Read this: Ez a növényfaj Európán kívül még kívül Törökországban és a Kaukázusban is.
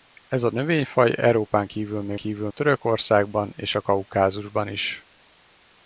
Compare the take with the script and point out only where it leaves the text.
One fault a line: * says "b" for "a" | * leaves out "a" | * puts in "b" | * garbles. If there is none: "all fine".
all fine